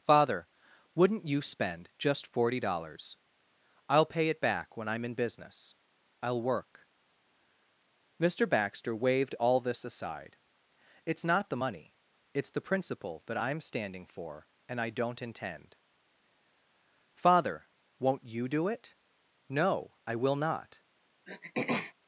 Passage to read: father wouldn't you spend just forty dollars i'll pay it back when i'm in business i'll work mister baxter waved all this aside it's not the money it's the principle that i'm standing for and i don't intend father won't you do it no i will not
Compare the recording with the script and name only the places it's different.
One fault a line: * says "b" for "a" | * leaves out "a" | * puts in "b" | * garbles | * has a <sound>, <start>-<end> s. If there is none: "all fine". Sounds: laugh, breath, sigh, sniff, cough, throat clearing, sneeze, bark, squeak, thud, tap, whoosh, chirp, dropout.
* has a throat clearing, 21.3-21.9 s